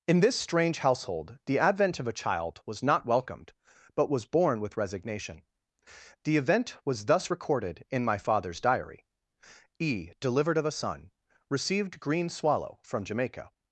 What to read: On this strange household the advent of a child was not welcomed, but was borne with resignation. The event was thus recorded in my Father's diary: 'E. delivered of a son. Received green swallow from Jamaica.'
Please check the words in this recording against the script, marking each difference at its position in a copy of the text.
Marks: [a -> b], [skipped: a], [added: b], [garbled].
[On -> In] this strange household the advent of a child was not welcomed, but was borne with resignation. The event was thus recorded in my Father's diary: 'E. delivered of a son. Received green swallow from Jamaica.'